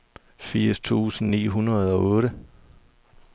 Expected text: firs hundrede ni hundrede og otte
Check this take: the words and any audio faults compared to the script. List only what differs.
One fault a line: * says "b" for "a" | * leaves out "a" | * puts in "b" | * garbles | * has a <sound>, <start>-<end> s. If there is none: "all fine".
* says "tusind" for "hundrede"